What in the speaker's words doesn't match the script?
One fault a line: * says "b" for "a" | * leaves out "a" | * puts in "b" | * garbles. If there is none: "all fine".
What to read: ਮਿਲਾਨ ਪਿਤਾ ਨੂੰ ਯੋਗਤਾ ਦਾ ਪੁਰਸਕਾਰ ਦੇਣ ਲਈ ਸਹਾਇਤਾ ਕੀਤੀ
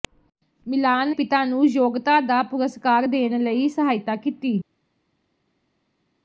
all fine